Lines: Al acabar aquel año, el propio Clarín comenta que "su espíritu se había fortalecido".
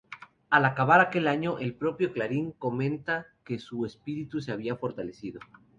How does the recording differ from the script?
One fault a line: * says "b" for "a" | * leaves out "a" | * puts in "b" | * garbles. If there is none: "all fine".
all fine